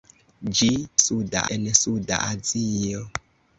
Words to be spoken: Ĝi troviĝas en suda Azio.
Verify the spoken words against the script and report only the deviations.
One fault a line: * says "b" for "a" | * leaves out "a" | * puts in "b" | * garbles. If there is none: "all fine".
* says "suda" for "troviĝas"